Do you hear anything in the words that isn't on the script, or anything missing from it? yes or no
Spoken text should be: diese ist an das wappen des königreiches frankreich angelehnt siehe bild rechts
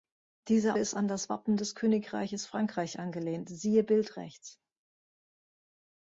no